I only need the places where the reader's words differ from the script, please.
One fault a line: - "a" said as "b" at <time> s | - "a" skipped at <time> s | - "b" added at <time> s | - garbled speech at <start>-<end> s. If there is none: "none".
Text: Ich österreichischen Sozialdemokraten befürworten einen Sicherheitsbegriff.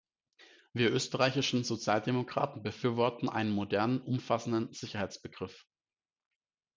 - "Ich" said as "Wir" at 0.7 s
- "modernen umfassenden" added at 3.5 s